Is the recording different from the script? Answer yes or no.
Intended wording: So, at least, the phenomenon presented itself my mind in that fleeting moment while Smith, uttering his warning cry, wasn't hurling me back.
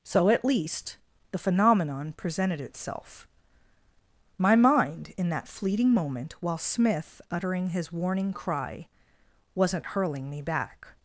no